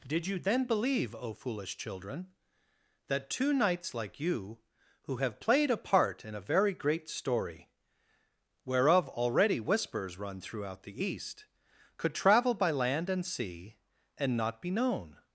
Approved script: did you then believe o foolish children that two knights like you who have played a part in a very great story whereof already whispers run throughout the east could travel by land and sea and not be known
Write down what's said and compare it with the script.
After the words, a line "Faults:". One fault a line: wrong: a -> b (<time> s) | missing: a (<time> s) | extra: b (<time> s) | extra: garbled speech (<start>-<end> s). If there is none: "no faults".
did you then believe o foolish children that two knights like you who have played a part in a very great story whereof already whispers run throughout the east could travel by land and sea and not be known
Faults:
no faults